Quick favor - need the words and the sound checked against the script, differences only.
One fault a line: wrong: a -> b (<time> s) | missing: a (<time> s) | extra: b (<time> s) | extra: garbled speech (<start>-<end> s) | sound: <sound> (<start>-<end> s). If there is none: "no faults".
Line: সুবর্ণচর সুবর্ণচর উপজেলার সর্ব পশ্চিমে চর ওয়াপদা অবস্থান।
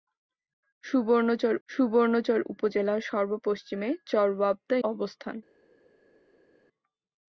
no faults